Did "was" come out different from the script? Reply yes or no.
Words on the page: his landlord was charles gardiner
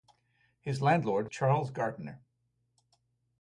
yes